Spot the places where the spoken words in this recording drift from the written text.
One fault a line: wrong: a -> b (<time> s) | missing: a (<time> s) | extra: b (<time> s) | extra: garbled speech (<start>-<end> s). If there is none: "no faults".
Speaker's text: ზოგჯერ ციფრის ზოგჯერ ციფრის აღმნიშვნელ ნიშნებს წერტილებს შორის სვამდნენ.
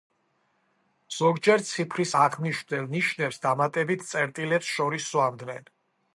missing: ზოგჯერ ციფრის (2.1 s)
extra: დამატებით (3.5 s)